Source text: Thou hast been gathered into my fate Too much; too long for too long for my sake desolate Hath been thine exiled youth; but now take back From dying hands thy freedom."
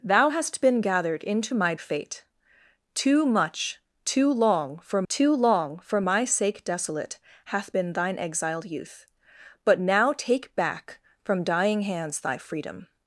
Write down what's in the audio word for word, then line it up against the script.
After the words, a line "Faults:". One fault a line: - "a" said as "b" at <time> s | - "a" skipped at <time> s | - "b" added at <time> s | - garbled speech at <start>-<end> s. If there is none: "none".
Thou hast been gathered into my fate Too much; too long for too long for my sake desolate Hath been thine exiled youth; but now take back From dying hands thy freedom."
Faults:
none